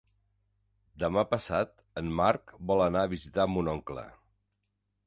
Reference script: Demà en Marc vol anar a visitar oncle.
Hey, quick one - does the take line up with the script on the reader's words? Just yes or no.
no